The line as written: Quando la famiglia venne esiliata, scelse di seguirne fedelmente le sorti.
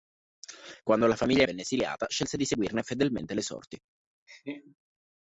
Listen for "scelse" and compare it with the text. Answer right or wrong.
right